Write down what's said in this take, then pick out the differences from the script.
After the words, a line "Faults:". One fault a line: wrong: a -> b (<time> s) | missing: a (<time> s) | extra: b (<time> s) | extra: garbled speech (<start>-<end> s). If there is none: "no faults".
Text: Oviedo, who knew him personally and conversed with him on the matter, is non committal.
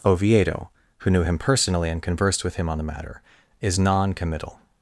Oviedo, who knew him personally and conversed with him on the matter, is non committal.
Faults:
no faults